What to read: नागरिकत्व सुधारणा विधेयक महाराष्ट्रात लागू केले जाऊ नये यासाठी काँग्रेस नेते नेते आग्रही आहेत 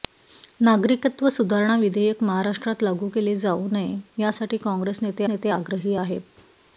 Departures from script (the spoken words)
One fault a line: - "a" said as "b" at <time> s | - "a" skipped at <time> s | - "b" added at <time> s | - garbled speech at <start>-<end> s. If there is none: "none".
none